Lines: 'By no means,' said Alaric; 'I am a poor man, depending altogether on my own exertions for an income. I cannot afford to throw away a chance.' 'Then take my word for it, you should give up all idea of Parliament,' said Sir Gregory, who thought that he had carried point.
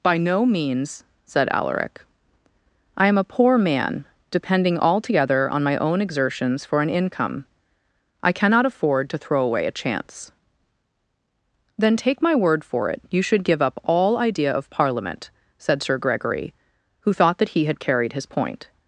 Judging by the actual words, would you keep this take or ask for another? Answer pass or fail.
fail